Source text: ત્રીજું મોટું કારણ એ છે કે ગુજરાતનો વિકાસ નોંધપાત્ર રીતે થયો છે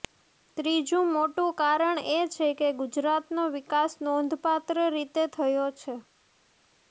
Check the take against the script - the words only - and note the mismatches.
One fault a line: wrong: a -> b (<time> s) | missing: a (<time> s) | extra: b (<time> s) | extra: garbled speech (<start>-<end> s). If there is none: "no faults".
no faults